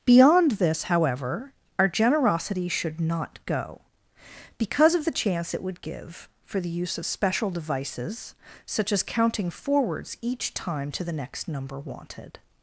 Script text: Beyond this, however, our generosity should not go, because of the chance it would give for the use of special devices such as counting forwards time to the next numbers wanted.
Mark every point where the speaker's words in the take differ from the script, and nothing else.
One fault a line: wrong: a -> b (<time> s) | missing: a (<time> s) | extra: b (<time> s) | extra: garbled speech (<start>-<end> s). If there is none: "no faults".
extra: each (10.2 s)
wrong: numbers -> number (11.5 s)